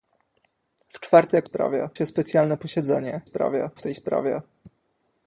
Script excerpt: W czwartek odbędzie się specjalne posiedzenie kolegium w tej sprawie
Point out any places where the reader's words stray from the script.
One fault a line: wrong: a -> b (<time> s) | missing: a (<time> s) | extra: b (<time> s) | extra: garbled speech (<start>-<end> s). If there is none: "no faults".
wrong: odbędzie -> sprawie (1.4 s)
wrong: kolegium -> sprawie (3.2 s)